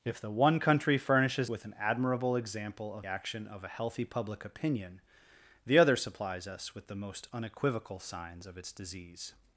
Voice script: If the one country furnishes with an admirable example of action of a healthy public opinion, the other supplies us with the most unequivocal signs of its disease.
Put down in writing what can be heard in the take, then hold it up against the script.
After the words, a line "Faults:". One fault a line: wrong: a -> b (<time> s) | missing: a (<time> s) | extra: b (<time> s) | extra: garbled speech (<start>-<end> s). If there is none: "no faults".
If the one country furnishes with an admirable example of action of a healthy public opinion, the other supplies us with the most unequivocal signs of its disease.
Faults:
no faults